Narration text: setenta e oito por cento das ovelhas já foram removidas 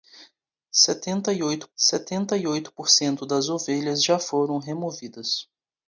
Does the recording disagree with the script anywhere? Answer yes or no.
yes